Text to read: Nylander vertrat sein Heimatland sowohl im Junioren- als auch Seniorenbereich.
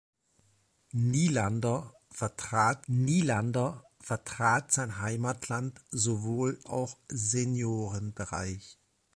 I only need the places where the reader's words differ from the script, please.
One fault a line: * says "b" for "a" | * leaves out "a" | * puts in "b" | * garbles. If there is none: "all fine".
* puts in "nylander vertrat"
* leaves out "im Junioren als"